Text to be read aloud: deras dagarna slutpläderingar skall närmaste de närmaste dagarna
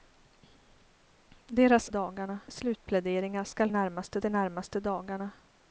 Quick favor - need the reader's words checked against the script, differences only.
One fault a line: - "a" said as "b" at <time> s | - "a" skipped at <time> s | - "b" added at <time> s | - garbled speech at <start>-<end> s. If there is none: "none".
none